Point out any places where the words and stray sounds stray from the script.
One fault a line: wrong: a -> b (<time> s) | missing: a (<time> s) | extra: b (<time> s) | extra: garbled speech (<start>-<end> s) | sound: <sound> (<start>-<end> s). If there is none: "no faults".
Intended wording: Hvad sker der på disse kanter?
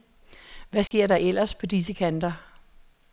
sound: dropout (0.9-0.9 s)
extra: ellers (1.1 s)